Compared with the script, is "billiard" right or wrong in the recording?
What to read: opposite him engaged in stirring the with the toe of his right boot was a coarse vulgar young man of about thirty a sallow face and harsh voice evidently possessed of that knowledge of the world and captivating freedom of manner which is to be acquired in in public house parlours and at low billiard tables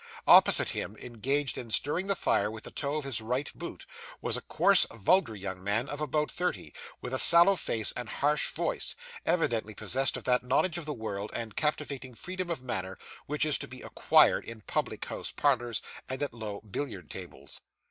right